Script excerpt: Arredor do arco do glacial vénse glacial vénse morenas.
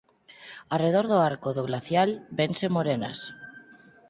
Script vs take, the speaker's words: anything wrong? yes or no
yes